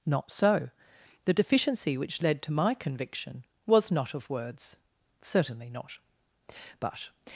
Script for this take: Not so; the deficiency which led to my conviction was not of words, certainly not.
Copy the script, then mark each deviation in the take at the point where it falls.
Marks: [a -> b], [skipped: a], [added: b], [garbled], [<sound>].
Not so; the deficiency which led to my conviction was not of words, certainly not. [added: But]